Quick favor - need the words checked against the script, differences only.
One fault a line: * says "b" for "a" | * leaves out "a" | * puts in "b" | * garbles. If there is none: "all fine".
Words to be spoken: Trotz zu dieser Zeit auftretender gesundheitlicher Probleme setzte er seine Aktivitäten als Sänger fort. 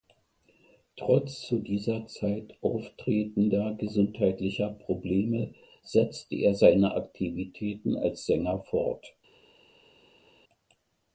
all fine